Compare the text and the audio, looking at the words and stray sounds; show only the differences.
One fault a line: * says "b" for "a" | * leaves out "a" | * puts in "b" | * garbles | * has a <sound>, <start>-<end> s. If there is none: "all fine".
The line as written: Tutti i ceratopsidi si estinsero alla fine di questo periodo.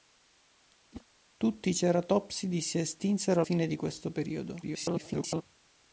* has a whoosh, 0.9-1.1 s
* leaves out "alla"
* garbles